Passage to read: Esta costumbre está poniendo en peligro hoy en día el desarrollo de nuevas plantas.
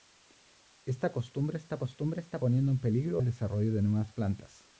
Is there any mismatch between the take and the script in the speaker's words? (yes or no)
yes